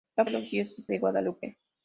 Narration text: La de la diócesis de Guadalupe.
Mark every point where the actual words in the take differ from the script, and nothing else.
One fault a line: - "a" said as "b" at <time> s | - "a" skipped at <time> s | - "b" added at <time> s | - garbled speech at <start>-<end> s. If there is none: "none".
none